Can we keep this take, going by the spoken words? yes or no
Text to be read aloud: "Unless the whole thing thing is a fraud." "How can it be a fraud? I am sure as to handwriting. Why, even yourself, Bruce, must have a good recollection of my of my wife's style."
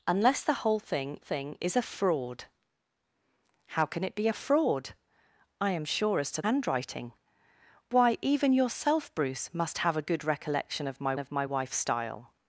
yes